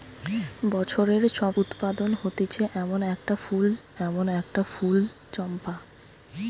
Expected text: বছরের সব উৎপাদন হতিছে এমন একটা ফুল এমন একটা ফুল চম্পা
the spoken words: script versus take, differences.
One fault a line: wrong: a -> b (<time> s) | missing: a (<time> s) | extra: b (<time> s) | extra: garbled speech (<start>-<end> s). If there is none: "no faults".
no faults